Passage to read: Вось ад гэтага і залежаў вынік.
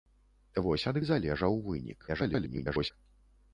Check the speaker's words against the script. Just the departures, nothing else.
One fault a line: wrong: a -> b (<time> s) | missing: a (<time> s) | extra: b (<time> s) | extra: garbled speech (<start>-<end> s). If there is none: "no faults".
missing: гэтага (1.0 s)
extra: garbled speech (2.1-2.9 s)